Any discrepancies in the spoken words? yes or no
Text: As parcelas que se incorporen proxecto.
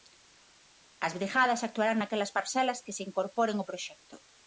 yes